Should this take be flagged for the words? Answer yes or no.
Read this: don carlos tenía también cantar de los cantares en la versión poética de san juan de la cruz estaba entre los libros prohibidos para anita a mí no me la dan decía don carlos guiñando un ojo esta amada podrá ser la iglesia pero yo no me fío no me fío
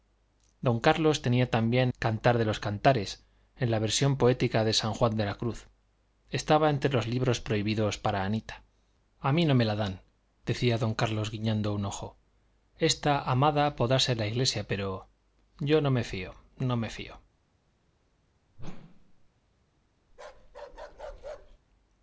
no